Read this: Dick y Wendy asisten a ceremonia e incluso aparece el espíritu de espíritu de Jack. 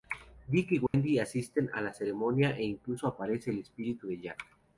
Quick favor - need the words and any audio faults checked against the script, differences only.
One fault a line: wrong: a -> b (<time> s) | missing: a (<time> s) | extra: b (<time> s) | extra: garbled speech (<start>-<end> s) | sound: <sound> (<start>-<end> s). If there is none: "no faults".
sound: dropout (0.9-0.9 s)
extra: la (1.8 s)
missing: espíritu de (4.2 s)